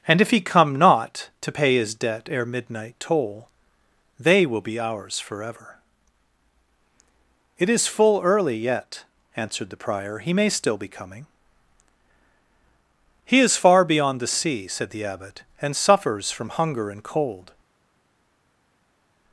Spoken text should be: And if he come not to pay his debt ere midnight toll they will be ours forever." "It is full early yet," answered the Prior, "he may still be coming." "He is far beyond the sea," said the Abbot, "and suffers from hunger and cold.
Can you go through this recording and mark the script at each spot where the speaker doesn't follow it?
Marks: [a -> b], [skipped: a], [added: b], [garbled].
And if he come not to pay his debt ere midnight toll they will be ours forever." "It is full early yet," answered the Prior, "he may still be coming." "He is far beyond the sea," said the Abbot, "and suffers from hunger and cold.